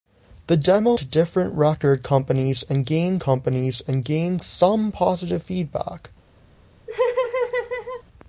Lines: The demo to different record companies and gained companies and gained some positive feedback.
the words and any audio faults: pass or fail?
fail